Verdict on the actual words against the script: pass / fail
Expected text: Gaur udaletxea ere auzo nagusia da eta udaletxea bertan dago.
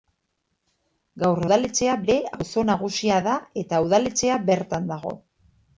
pass